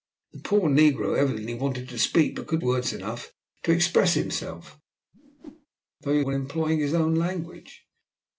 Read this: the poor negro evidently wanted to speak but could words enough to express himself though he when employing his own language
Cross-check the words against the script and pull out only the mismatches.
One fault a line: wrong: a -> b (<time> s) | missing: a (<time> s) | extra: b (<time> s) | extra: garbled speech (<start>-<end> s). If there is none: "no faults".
no faults